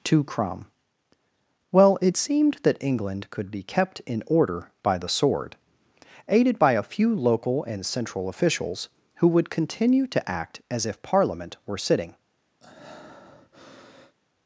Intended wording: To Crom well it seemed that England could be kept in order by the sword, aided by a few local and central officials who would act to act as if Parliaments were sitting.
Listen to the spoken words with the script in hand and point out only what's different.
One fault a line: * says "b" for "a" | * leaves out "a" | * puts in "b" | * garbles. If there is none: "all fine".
* says "continue" for "act"
* says "Parliament" for "Parliaments"